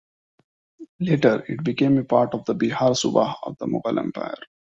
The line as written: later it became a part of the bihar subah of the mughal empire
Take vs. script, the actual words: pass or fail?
pass